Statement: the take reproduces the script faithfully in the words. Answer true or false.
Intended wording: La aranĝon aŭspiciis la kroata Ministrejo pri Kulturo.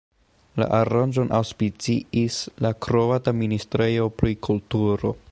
true